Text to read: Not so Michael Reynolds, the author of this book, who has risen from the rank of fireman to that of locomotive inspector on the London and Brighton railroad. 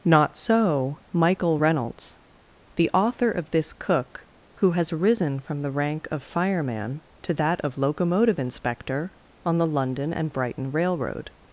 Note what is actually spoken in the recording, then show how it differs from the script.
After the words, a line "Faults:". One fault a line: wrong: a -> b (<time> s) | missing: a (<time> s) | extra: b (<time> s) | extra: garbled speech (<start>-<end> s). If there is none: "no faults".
Not so Michael Reynolds, the author of this cook, who has risen from the rank of fireman to that of locomotive inspector on the London and Brighton railroad.
Faults:
wrong: book -> cook (3.7 s)